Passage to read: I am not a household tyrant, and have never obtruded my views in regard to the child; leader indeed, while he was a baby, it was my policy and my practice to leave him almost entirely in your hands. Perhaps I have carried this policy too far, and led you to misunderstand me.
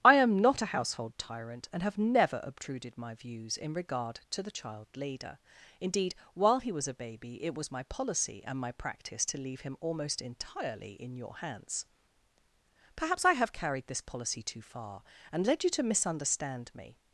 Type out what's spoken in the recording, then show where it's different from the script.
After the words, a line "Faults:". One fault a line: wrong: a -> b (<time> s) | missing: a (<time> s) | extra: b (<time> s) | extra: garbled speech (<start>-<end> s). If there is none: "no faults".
I am not a household tyrant, and have never obtruded my views in regard to the child; leader indeed, while he was a baby, it was my policy and my practice to leave him almost entirely in your hands. Perhaps I have carried this policy too far, and led you to misunderstand me.
Faults:
no faults